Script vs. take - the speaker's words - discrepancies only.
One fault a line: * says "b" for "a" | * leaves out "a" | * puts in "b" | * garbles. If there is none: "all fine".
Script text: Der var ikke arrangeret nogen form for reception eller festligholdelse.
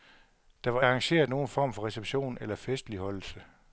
* leaves out "ikke"